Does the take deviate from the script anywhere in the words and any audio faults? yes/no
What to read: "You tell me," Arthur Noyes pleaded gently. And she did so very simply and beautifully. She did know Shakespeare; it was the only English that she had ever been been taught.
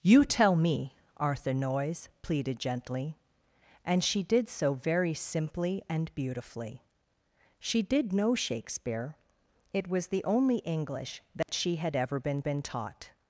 yes